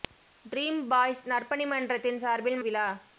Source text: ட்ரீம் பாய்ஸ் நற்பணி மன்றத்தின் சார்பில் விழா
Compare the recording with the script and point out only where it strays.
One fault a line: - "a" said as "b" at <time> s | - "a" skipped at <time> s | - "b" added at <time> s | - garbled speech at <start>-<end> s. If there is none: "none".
none